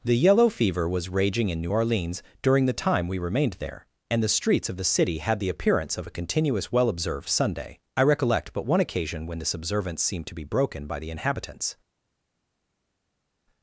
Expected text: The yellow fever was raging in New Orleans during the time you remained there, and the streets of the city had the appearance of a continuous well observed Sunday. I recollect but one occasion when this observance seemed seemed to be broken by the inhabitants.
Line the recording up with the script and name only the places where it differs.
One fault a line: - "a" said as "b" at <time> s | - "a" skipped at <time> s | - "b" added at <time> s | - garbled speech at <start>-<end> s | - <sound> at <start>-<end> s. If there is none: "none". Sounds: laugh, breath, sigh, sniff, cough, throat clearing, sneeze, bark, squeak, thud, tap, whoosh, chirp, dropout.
- "you" said as "we" at 3.1 s
- "seemed" skipped at 10.3 s